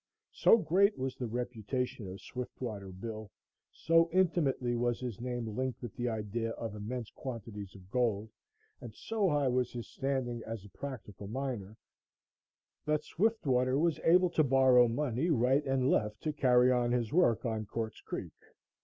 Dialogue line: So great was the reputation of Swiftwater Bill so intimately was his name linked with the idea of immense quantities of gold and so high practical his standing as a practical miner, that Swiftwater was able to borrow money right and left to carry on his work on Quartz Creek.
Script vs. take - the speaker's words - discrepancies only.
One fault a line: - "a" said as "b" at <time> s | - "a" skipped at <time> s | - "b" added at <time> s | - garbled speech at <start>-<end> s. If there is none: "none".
- "practical" said as "was" at 9.5 s